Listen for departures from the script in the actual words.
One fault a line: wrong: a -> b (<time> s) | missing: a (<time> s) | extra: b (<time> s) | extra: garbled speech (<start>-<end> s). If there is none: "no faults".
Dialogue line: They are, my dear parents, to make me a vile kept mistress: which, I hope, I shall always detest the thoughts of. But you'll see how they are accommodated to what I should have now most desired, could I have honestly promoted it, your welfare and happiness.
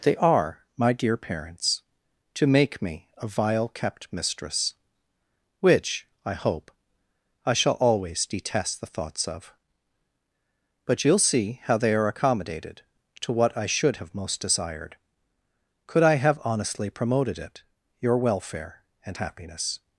missing: now (14.1 s)